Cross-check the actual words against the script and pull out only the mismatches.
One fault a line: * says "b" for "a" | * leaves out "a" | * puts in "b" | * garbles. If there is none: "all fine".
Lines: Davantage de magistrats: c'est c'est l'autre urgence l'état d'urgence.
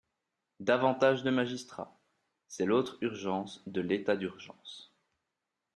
* leaves out "c'est"
* puts in "de"